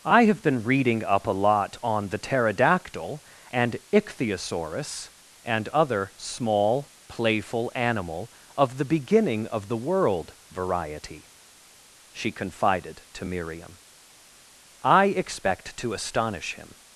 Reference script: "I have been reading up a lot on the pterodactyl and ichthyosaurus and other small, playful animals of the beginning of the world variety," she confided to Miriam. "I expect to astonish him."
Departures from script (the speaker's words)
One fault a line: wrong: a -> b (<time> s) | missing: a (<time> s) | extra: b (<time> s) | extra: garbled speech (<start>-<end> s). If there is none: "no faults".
wrong: animals -> animal (7.7 s)